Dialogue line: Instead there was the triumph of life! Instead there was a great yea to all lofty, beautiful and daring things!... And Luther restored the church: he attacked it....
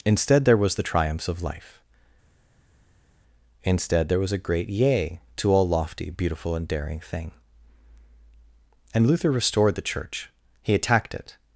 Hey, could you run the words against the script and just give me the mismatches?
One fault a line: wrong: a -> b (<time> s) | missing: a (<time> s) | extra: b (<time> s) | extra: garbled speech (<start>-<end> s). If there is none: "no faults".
wrong: triumph -> triumphs (0.8 s)
wrong: things -> thing (7.0 s)